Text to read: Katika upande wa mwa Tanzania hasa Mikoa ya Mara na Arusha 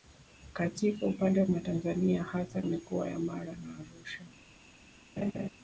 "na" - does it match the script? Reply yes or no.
yes